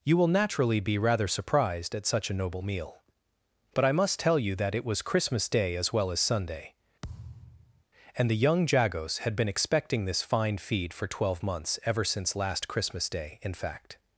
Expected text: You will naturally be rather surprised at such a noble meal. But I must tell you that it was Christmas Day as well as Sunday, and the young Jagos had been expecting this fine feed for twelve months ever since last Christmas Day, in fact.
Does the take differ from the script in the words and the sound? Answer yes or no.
yes